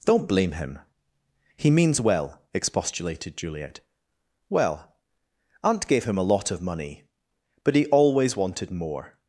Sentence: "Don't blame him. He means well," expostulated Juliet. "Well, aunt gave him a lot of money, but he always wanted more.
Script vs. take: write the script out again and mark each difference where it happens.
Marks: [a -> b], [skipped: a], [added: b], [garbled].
"Don't blame him. He means well," expostulated Juliet. "Well, aunt gave him a lot of money, but he always wanted more.